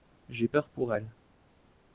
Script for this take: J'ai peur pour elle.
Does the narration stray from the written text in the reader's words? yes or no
no